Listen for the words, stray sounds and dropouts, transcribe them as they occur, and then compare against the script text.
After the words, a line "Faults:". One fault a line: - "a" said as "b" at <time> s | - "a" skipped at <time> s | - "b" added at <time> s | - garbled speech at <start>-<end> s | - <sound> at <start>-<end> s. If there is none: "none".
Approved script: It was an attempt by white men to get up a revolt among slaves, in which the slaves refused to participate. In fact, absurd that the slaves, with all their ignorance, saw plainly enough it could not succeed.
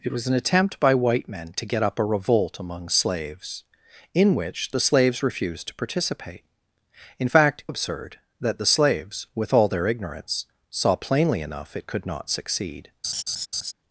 It was an attempt by white men to get up a revolt among slaves, in which the slaves refused to participate. In fact, absurd that the slaves, with all their ignorance, saw plainly enough it could not succeed.
Faults:
- laugh at 13.0-13.7 s